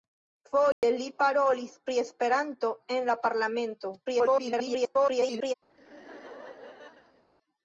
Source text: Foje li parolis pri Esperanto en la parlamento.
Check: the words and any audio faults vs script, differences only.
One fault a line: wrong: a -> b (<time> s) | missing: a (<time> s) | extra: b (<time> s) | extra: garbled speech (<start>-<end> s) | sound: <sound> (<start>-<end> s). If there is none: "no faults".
sound: dropout (0.7-0.8 s)
extra: garbled speech (4.0-5.5 s)
sound: laugh (5.7-7.2 s)